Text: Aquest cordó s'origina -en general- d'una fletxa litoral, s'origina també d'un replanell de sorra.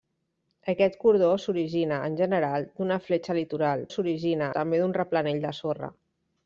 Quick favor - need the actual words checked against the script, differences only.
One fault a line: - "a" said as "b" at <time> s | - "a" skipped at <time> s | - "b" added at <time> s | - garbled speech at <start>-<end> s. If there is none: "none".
none